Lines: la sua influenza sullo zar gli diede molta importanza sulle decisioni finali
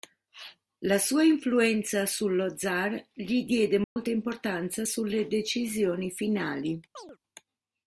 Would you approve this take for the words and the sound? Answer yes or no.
no